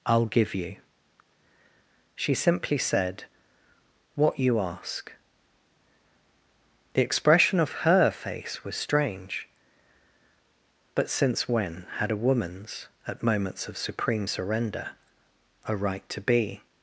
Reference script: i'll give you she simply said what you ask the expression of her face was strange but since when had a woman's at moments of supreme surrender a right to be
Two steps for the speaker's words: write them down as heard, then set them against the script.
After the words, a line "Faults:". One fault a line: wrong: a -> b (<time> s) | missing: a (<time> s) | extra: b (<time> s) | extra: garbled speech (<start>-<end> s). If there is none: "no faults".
i'll give you she simply said what you ask the expression of her face was strange but since when had a woman's at moments of supreme surrender a right to be
Faults:
no faults